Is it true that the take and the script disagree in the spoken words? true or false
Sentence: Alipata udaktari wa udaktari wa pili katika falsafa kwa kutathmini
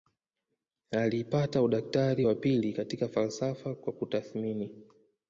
true